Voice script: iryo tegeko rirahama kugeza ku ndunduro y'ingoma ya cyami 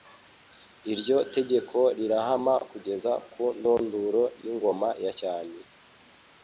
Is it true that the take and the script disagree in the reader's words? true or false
false